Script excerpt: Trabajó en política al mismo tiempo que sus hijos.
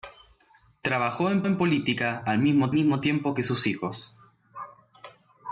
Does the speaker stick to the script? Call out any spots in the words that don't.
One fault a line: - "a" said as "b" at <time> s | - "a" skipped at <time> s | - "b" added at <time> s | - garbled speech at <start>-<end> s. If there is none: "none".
- "en" added at 1.4 s
- "mismo" added at 2.7 s